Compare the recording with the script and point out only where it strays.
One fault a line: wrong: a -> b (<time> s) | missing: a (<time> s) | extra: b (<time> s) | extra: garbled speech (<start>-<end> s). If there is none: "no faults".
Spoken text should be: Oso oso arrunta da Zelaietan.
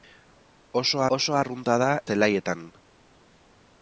no faults